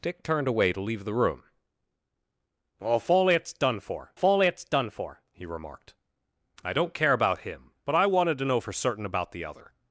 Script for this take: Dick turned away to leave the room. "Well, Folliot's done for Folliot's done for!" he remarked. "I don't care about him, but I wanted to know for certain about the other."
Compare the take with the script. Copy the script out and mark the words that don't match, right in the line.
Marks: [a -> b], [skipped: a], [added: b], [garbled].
Dick turned away to leave the room. "Well, Folliot's done for Folliot's done for!" he remarked. "I don't care about him, but I wanted to know for certain about the other."